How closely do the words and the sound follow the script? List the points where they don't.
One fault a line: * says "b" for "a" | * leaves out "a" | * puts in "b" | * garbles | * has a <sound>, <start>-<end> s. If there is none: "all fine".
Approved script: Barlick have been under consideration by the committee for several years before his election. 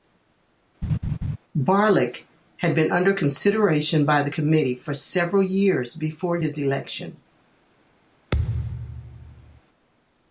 * has a laugh, 0.8-1.4 s
* says "had" for "have"
* has a thud, 8.3-9.6 s